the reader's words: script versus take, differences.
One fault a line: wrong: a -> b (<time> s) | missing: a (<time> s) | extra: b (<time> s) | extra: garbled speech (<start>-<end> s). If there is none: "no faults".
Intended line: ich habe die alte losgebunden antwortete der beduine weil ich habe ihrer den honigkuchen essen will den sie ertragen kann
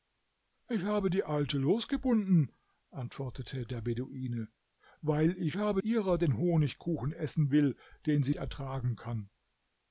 no faults